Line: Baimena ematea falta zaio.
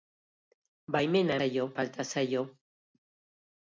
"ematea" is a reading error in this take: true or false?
true